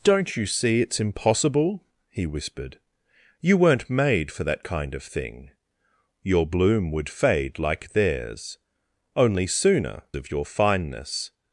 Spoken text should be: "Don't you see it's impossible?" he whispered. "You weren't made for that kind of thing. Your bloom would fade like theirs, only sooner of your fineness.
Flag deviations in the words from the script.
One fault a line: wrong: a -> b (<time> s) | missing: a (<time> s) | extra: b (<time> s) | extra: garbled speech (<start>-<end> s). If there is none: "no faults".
no faults